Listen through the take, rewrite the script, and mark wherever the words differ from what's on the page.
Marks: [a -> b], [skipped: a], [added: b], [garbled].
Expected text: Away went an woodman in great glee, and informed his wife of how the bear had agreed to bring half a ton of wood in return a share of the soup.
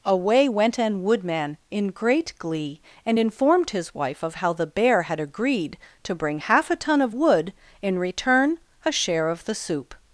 Away went an woodman in great glee, and informed his wife of how the bear had agreed to bring half a ton of wood in return a share of the soup.